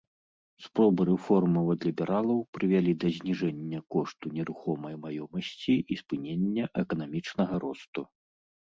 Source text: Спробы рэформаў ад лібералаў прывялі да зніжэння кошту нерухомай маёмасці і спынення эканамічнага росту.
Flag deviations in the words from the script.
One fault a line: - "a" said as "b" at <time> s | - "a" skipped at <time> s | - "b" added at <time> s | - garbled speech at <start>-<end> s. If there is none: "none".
none